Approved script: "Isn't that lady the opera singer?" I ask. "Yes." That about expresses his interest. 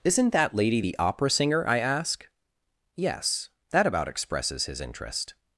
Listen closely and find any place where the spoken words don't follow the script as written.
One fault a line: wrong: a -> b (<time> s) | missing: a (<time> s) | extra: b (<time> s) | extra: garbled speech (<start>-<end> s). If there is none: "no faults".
no faults